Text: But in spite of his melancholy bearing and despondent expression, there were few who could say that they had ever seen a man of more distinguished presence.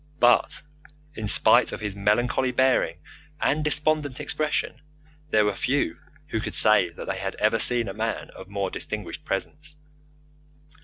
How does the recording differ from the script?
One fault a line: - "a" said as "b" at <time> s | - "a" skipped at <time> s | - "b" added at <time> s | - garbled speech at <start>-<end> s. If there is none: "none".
none